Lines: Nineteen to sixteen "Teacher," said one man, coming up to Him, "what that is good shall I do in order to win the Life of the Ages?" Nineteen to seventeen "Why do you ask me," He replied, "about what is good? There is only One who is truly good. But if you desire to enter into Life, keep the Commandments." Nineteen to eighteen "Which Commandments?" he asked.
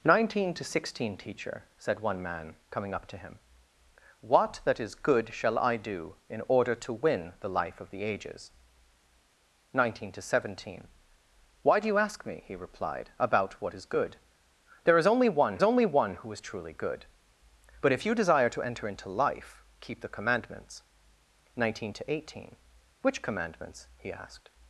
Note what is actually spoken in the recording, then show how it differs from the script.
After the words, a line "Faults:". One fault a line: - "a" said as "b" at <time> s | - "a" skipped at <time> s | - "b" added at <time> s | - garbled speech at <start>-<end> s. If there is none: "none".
Nineteen to sixteen "Teacher," said one man, coming up to Him, "what that is good shall I do in order to win the Life of the Ages?" Nineteen to seventeen "Why do you ask me," He replied, "about what is good? There is only One only One who is truly good. But if you desire to enter into Life, keep the Commandments." Nineteen to eighteen "Which Commandments?" he asked.
Faults:
- "only One" added at 15.6 s